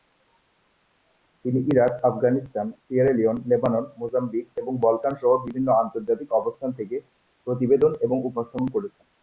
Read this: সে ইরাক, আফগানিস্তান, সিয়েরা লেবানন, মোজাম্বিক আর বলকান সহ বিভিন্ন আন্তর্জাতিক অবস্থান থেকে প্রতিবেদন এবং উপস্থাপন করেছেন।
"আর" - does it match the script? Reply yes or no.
no